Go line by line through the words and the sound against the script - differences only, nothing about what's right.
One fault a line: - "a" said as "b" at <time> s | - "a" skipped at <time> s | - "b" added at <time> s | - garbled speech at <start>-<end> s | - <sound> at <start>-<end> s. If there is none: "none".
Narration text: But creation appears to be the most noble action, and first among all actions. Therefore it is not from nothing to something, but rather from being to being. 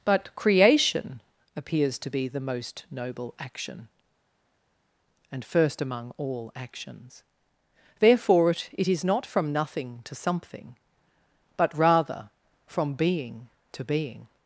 - "it" added at 8.7 s